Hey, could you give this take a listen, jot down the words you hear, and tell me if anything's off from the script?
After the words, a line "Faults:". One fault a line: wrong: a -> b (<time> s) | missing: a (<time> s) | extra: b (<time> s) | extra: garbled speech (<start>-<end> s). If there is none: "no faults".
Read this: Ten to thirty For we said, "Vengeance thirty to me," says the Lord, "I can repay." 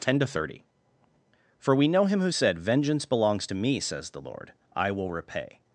Ten to thirty For we know him who said, "Vengeance belongs to me," says the Lord, "I will repay."
Faults:
extra: know him who (1.9 s)
wrong: thirty -> belongs (3.0 s)
wrong: can -> will (4.9 s)